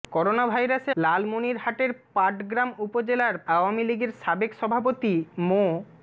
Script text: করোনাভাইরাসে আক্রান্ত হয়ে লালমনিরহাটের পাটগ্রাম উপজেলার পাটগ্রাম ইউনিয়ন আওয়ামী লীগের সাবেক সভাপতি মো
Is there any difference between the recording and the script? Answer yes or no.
yes